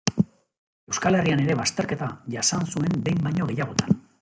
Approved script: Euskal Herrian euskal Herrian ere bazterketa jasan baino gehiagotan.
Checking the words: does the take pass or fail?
fail